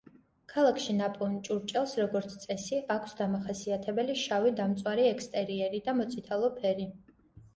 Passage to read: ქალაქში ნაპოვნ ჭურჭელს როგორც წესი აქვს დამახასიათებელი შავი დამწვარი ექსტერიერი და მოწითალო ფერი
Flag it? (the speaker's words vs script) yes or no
no